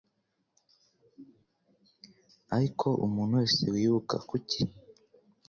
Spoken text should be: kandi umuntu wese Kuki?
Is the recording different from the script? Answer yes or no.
yes